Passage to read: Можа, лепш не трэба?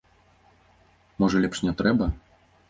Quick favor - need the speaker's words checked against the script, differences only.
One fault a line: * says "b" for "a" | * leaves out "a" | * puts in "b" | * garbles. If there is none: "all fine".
all fine